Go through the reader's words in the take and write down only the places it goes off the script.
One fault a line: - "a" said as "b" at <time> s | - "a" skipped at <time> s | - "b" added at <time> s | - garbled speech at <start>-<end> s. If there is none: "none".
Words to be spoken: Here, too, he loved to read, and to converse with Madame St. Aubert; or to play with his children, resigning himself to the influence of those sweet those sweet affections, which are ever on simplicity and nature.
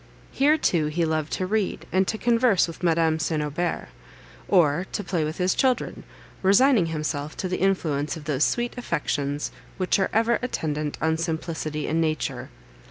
- "those sweet" skipped at 8.8 s
- "attendant" added at 10.4 s